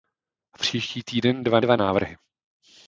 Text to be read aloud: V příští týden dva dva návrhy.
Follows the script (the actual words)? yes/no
yes